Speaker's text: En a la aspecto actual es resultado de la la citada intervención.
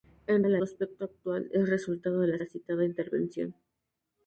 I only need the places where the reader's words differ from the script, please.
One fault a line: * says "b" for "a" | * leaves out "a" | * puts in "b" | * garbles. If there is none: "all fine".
all fine